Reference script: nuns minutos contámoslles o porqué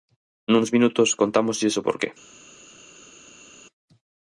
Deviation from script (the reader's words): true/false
false